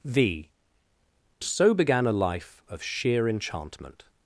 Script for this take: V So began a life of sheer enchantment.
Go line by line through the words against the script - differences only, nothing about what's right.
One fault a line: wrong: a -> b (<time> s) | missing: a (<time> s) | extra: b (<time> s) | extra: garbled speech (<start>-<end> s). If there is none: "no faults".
no faults